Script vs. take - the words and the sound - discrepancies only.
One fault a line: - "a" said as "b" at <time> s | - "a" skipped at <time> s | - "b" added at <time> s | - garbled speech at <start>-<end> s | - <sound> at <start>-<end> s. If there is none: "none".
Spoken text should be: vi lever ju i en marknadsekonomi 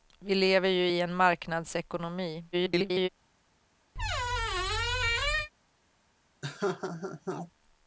- garbled speech at 2.5-3.1 s
- squeak at 3.9-5.5 s
- laugh at 6.4-7.5 s